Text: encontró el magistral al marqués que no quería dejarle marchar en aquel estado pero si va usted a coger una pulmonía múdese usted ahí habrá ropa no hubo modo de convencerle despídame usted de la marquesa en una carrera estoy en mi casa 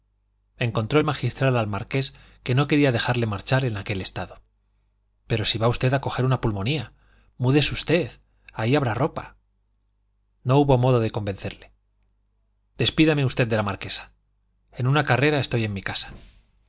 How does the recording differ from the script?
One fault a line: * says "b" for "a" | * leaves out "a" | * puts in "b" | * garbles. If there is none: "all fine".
all fine